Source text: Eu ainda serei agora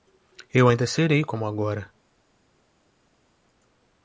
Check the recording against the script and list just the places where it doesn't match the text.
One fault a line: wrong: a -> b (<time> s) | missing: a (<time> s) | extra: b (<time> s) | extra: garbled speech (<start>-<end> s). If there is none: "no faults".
extra: como (1.3 s)